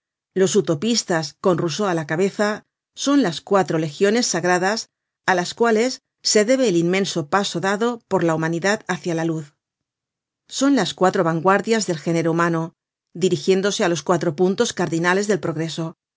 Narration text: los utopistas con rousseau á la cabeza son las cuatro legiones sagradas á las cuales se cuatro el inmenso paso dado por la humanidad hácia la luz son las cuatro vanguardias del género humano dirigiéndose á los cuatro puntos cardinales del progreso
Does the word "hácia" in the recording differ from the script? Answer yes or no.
no